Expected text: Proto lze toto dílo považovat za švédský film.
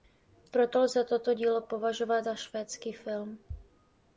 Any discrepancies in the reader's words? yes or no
no